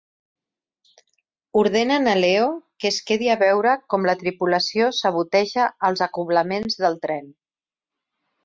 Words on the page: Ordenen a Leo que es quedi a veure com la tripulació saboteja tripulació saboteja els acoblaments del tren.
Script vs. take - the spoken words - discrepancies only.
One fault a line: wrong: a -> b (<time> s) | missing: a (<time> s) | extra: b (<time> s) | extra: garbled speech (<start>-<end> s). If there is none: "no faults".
missing: tripulació saboteja (5.7 s)